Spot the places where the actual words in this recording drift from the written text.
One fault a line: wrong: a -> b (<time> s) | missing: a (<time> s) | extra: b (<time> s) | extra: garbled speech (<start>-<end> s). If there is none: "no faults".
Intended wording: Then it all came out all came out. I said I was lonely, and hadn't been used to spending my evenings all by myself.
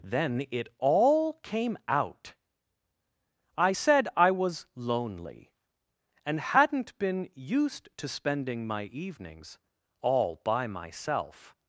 missing: all came out (2.3 s)